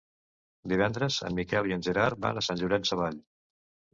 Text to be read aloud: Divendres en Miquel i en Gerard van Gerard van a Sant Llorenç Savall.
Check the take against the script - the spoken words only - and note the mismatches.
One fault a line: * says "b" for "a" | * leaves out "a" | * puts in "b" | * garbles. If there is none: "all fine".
* leaves out "Gerard van"